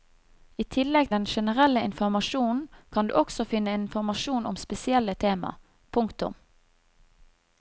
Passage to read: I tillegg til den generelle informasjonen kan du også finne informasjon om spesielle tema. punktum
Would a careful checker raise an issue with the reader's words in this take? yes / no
yes